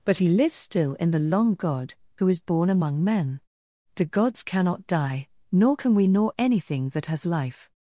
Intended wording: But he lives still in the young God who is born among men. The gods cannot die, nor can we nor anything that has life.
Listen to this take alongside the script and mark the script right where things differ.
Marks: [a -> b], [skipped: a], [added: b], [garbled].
But he lives still in the [young -> long] God who is born among men. The gods cannot die, nor can we nor anything that has life.